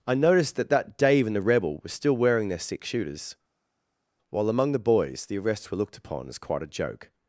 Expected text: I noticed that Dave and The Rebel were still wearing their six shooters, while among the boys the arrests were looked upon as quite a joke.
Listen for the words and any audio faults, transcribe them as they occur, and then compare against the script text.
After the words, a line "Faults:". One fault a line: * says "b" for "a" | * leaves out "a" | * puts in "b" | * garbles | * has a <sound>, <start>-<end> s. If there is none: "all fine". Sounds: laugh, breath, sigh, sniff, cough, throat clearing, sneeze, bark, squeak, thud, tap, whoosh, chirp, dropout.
I noticed that that Dave and The Rebel were still wearing their six shooters, while among the boys the arrests were looked upon as quite a joke.
Faults:
* puts in "that"